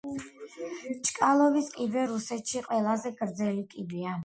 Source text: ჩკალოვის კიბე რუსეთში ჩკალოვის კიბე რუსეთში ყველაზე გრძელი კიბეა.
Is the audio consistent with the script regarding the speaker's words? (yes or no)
no